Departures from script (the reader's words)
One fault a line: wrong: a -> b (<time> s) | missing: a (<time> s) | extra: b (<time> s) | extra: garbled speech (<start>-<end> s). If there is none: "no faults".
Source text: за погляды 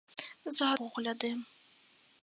no faults